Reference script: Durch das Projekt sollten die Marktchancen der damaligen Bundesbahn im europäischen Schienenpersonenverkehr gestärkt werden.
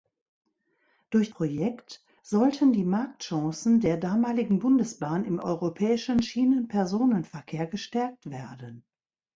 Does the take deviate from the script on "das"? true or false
true